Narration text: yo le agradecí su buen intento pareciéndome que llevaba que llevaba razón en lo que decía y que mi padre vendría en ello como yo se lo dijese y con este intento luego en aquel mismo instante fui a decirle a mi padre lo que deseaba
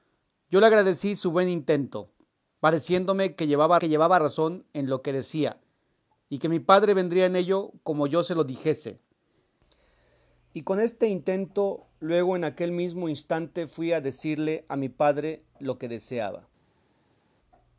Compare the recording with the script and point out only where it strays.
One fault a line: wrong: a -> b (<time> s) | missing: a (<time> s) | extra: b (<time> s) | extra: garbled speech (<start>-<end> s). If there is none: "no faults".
no faults